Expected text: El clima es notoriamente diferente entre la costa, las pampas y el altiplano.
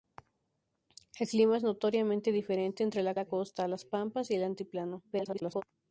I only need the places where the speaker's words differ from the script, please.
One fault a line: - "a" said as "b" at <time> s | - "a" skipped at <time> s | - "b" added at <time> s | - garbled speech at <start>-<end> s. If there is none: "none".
- "la" added at 3.1 s
- garbled speech at 5.1-5.6 s